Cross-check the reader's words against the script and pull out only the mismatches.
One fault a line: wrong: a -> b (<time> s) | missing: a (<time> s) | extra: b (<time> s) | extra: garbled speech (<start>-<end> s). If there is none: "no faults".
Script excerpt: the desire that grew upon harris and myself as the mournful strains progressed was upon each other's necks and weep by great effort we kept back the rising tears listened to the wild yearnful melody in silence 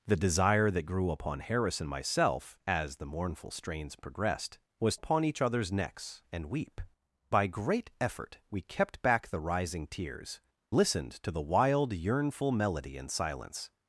no faults